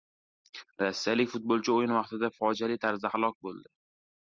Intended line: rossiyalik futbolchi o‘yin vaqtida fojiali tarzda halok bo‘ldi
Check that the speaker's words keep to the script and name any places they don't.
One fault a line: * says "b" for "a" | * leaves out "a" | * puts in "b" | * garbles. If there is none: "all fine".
all fine